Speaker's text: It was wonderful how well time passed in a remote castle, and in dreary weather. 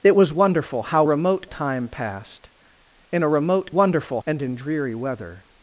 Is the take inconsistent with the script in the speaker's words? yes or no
yes